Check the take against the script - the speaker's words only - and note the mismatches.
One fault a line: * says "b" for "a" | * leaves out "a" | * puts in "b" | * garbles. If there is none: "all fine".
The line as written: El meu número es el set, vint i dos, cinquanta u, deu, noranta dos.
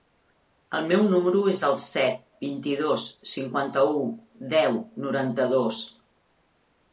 all fine